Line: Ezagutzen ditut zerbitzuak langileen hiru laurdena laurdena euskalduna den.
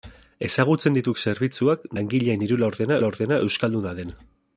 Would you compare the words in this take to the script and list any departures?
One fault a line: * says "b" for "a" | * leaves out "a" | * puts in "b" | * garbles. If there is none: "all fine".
all fine